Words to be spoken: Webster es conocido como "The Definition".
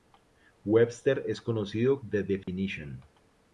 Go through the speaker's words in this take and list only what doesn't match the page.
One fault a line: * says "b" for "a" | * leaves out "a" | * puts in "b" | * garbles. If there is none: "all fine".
* leaves out "como"